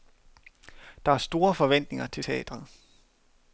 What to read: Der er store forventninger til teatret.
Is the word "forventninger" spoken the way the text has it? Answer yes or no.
yes